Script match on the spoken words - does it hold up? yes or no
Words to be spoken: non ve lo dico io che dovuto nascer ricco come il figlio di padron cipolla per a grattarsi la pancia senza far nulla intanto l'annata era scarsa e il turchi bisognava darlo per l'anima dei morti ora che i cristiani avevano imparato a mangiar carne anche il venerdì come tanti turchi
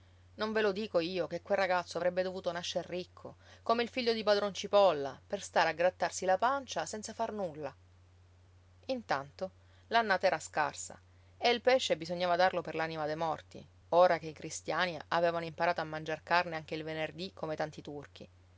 no